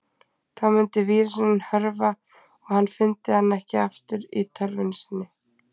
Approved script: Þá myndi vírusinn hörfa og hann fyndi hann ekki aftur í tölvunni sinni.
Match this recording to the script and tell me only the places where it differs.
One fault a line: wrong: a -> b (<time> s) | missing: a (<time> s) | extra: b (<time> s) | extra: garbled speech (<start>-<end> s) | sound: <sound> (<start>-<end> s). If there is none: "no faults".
no faults